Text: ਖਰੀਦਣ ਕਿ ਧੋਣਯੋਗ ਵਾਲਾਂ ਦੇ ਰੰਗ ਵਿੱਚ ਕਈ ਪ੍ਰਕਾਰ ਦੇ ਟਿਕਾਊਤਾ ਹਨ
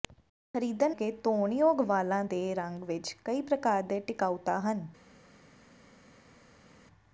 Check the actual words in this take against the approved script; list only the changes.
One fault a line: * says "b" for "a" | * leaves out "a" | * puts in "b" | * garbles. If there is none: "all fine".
all fine